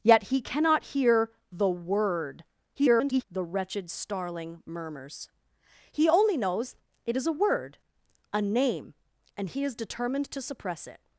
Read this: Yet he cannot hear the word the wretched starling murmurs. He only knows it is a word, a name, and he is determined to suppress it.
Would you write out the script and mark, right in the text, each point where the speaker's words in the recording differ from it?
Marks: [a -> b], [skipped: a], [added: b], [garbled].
Yet he cannot hear the word [garbled] the wretched starling murmurs. He only knows it is a word, a name, and he is determined to suppress it.